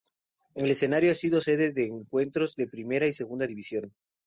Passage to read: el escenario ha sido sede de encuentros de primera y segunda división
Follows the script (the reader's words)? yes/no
yes